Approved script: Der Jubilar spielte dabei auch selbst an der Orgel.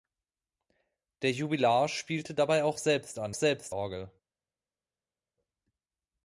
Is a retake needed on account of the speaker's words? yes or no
yes